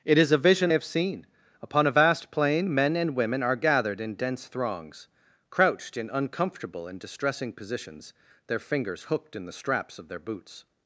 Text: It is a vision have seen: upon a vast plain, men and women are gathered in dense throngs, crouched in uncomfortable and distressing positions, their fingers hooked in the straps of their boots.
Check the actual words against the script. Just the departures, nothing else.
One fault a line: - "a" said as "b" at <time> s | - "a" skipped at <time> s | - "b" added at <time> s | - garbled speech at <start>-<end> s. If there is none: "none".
none